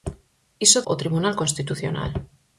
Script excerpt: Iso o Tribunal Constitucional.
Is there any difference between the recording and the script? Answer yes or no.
no